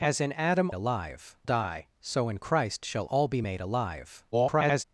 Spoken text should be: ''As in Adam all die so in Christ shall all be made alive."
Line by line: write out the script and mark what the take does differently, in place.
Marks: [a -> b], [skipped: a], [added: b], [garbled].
''As in Adam [all -> alive] die so in Christ shall all be made alive." [garbled]